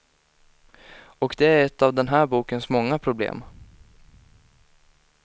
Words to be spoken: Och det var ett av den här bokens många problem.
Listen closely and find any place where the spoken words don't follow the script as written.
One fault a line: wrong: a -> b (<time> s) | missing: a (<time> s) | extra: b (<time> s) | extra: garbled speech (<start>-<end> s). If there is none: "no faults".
wrong: var -> är (1.4 s)